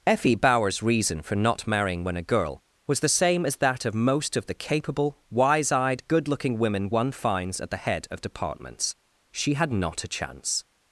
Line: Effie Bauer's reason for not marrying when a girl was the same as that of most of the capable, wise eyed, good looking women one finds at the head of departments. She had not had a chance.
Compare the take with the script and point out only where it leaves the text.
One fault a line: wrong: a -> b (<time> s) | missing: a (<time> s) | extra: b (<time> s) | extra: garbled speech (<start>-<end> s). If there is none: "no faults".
missing: had (10.0 s)